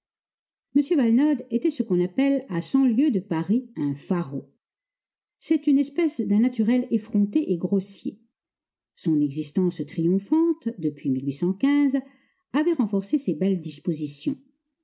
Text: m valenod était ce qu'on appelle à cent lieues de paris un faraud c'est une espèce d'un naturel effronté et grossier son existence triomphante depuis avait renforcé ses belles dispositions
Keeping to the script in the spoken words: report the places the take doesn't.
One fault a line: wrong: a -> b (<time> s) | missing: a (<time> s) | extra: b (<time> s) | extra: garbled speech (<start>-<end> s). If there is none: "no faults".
no faults